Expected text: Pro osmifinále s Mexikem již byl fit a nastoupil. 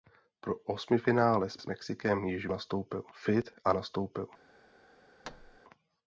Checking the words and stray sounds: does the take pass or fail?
fail